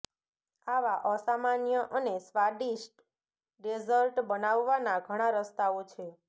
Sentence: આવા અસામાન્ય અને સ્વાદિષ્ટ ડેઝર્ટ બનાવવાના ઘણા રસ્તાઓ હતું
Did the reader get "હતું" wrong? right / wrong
wrong